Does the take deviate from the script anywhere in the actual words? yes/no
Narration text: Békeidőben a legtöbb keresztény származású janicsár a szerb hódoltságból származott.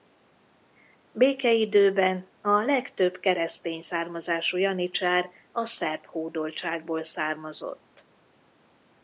no